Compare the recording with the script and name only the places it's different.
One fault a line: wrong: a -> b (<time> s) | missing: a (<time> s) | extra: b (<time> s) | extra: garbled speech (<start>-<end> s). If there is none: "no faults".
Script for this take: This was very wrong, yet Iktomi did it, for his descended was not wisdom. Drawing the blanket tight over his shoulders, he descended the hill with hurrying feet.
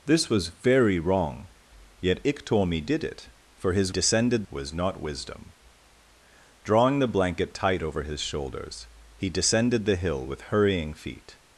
no faults